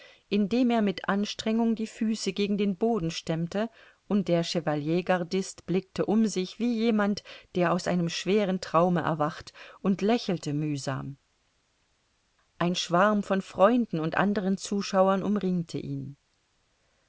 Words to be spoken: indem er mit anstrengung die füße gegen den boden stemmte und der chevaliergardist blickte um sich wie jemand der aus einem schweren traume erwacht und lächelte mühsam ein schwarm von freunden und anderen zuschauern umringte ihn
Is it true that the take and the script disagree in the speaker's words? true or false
false